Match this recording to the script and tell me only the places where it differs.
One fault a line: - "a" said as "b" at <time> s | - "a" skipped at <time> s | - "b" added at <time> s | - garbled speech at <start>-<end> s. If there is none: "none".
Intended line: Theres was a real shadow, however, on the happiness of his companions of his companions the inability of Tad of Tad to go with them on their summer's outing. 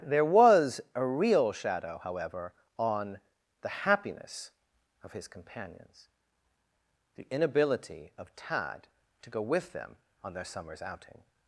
- "Theres" said as "There" at 0.0 s
- "of his companions" skipped at 6.1 s
- "of Tad" skipped at 8.9 s